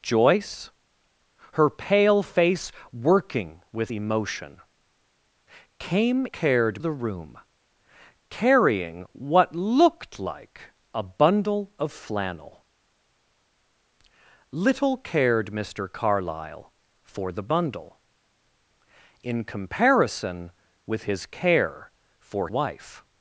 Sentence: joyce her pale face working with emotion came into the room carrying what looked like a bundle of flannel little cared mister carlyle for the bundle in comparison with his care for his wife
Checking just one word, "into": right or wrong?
wrong